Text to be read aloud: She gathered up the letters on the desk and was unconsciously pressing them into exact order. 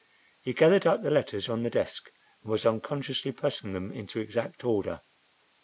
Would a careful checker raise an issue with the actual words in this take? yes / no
yes